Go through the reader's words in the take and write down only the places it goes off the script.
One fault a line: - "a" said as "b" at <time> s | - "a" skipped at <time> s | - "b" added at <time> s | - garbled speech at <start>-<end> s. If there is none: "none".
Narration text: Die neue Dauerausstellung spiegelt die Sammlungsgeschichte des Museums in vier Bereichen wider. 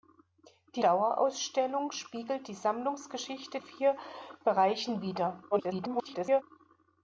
- "neue" skipped at 0.8 s
- "des Museums in" skipped at 3.6 s
- garbled speech at 5.5-6.4 s